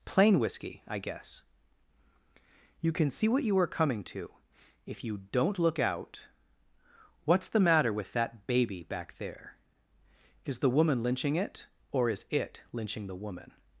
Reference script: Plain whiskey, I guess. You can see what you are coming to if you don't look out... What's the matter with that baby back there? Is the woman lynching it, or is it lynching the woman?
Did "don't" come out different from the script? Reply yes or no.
no